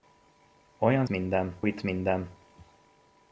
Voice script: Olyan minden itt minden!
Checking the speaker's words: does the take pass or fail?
pass